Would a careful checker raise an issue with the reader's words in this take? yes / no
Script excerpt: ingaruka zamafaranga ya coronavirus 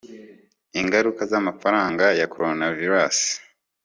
no